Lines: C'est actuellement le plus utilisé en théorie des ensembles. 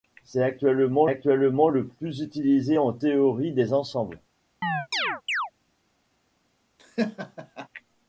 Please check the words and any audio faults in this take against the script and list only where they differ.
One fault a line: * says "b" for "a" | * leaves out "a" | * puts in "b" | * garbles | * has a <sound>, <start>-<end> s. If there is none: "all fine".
* puts in "actuellement"
* has a chirp, 4.6-5.5 s
* has a laugh, 6.8-7.7 s